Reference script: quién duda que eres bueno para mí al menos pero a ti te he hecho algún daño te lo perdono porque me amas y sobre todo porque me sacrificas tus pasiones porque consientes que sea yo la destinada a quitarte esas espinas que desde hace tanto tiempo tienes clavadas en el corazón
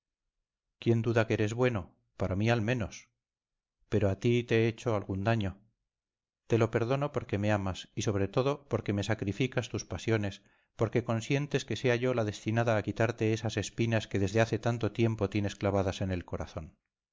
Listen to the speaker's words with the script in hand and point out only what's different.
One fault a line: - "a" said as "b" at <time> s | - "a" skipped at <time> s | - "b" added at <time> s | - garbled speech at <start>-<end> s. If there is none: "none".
none